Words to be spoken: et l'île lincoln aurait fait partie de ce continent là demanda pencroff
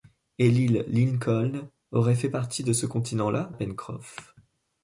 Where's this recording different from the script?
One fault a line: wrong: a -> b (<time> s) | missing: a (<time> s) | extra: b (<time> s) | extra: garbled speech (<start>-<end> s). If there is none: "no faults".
missing: demanda (3.5 s)